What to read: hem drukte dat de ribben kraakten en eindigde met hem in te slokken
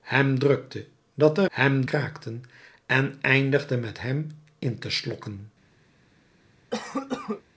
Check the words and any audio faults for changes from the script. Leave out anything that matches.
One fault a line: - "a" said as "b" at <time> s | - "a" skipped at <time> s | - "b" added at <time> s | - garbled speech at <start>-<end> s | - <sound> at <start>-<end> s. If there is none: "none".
- "ribben" said as "hem" at 1.5 s
- cough at 6.7-7.4 s